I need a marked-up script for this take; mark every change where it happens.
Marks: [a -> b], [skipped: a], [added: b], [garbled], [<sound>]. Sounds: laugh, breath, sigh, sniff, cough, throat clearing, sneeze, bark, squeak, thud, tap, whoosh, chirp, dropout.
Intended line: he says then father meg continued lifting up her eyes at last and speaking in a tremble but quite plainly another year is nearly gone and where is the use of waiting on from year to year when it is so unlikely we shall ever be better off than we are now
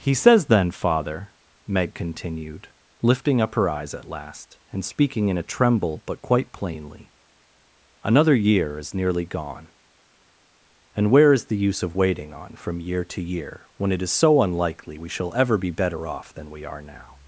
he says then father meg continued lifting up her eyes at last and speaking in a tremble but quite plainly another year is nearly gone and where is the use of waiting on from year to year when it is so unlikely we shall ever be better off than we are now